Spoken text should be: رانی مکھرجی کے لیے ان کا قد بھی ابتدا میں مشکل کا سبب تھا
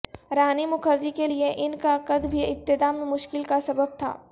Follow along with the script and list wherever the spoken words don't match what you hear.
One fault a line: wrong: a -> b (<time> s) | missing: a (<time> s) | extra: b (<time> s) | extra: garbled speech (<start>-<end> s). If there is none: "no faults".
no faults